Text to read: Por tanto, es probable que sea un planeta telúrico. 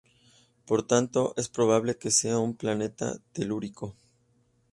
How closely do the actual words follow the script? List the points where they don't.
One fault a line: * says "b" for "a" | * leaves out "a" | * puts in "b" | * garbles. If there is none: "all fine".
all fine